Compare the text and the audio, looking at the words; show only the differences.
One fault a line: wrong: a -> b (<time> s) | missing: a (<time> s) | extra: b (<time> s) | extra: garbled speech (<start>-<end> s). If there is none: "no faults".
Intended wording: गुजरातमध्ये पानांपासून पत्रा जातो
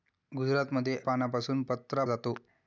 no faults